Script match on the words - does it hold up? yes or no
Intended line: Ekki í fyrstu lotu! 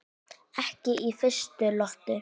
yes